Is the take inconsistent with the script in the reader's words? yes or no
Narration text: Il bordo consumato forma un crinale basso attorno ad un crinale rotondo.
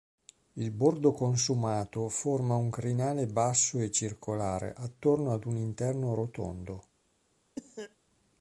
yes